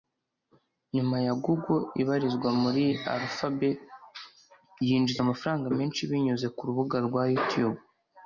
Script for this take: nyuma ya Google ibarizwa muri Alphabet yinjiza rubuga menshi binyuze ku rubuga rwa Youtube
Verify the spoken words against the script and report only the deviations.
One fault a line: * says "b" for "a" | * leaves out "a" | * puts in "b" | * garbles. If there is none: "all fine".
* says "amafaranga" for "rubuga"